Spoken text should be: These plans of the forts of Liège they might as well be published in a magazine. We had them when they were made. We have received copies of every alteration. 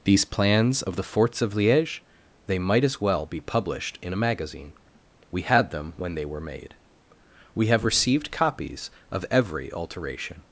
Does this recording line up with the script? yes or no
yes